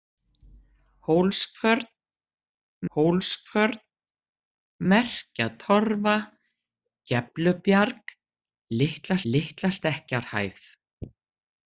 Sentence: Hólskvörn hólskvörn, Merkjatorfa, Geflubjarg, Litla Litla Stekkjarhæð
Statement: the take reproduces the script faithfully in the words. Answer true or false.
true